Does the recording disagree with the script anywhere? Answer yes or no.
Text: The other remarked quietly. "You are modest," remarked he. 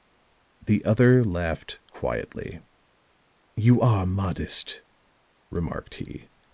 yes